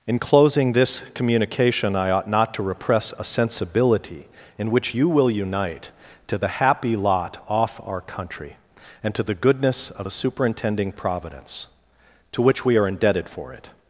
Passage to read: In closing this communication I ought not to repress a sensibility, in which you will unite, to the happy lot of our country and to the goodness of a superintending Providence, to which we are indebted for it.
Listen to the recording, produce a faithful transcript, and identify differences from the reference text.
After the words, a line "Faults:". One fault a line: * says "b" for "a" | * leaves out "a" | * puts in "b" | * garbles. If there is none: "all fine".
In closing this communication I ought not to repress a sensibility, in which you will unite, to the happy lot off our country and to the goodness of a superintending Providence, to which we are indebted for it.
Faults:
* says "off" for "of"